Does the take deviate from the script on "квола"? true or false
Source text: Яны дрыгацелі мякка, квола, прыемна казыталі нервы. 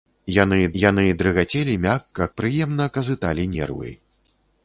true